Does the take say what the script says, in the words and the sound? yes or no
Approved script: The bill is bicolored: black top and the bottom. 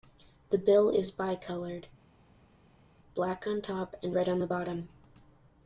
no